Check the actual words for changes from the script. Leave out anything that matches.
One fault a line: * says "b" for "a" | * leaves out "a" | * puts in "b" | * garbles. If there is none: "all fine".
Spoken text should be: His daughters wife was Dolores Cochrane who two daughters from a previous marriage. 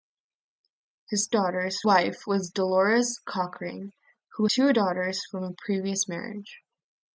all fine